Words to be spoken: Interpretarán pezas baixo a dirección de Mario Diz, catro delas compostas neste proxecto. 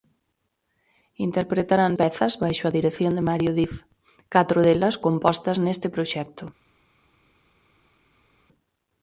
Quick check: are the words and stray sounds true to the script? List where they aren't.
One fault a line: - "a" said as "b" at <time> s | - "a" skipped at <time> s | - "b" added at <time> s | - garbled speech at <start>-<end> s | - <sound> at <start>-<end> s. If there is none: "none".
none